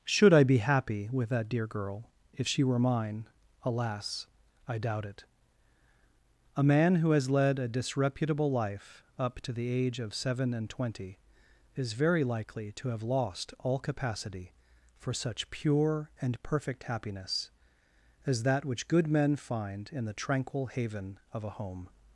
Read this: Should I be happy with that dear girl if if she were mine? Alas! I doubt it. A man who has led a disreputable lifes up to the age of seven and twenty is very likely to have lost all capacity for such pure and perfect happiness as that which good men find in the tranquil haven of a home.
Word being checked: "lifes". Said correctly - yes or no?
no